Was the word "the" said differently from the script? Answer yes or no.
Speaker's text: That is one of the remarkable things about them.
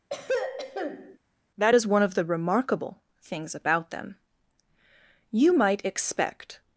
no